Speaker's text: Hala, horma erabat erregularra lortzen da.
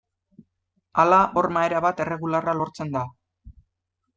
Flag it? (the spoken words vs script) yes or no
no